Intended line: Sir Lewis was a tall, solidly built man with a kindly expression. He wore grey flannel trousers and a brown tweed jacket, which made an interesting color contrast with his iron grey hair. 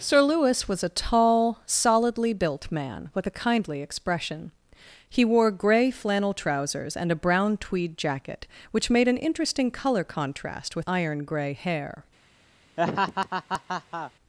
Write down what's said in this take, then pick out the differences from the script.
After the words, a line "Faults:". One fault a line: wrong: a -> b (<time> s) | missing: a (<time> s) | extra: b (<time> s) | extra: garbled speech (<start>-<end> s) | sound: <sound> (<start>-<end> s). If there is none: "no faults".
Sir Lewis was a tall, solidly built man with a kindly expression. He wore grey flannel trousers and a brown tweed jacket, which made an interesting color contrast with iron grey hair.
Faults:
missing: his (10.9 s)
sound: laugh (12.8-14.1 s)